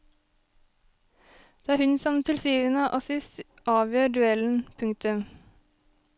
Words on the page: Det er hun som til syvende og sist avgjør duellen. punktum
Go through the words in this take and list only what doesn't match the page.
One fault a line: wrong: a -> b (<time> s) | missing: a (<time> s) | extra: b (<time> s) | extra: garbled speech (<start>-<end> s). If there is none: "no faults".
no faults